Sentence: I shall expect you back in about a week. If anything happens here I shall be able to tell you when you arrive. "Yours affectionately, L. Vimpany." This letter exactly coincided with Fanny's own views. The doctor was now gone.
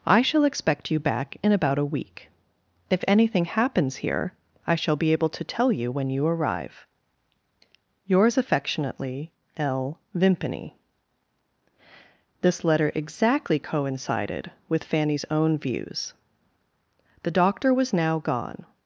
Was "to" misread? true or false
false